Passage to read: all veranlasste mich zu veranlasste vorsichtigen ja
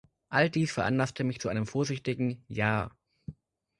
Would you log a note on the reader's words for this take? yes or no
yes